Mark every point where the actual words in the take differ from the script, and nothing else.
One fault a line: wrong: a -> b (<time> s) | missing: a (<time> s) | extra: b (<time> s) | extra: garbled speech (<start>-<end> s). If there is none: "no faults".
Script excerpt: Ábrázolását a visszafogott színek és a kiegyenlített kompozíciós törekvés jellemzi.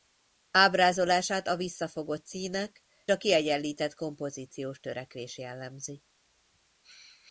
missing: és (2.8 s)